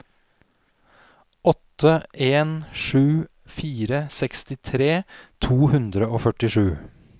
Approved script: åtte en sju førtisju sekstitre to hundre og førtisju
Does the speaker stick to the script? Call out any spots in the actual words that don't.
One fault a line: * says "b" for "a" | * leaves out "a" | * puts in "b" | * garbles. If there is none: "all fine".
* says "fire" for "førtisju"